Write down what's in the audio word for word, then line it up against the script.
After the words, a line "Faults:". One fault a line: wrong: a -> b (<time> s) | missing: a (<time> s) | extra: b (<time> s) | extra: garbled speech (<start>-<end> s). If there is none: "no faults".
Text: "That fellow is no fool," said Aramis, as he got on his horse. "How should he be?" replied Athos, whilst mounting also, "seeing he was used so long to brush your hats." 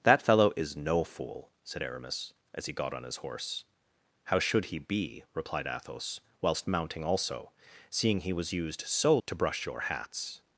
"That fellow is no fool," said Aramis, as he got on his horse. "How should he be?" replied Athos, whilst mounting also, "seeing he was used so to brush your hats."
Faults:
missing: long (9.2 s)